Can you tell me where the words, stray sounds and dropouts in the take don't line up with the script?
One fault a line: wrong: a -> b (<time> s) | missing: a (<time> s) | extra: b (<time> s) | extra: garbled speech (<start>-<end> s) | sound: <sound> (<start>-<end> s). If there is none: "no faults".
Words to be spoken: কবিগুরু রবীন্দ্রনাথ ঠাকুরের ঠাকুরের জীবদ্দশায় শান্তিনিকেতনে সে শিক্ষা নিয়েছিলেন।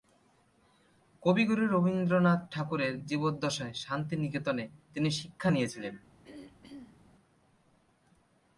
missing: ঠাকুরের (2.9 s)
wrong: সে -> তিনি (4.9 s)
sound: throat clearing (6.2-7.0 s)